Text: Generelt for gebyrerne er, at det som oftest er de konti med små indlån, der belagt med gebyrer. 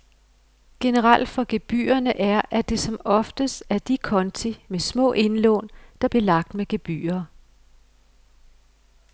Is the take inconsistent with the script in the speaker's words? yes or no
no